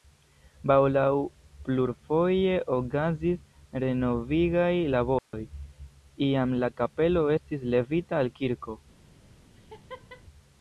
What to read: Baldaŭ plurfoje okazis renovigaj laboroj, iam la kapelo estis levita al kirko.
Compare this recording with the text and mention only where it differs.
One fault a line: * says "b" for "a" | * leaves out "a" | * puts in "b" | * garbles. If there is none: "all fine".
all fine